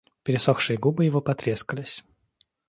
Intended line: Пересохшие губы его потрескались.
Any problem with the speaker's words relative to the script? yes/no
no